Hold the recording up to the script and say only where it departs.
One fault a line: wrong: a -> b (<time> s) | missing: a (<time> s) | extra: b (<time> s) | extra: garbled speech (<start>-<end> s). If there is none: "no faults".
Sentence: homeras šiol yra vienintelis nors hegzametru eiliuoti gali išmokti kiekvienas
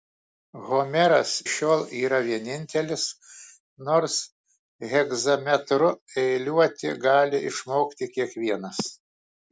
no faults